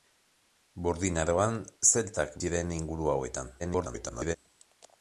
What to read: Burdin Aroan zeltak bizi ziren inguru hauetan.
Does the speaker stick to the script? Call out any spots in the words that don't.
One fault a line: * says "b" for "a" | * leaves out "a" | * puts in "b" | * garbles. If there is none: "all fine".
* leaves out "bizi"
* garbles